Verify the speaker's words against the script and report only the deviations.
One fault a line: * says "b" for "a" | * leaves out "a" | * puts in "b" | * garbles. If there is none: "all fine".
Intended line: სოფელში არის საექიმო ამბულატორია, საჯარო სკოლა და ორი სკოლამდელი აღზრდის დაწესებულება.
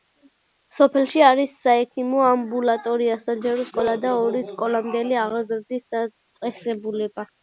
all fine